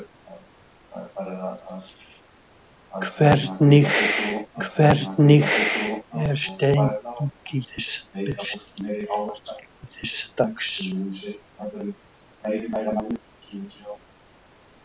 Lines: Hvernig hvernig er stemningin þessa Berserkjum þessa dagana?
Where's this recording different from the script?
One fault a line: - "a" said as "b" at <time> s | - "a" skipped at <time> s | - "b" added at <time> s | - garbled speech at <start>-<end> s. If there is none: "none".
none